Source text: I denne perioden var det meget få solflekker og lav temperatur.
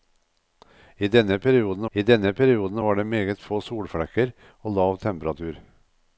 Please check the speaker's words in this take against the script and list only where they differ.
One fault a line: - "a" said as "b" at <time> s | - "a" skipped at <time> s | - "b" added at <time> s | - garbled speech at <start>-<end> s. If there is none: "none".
- "I denne perioden" added at 1.9 s